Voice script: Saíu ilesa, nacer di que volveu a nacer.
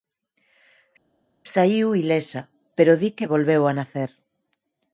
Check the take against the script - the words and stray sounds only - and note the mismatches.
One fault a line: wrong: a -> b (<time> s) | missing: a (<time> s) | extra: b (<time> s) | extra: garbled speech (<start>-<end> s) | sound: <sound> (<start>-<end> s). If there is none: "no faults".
wrong: nacer -> pero (2.8 s)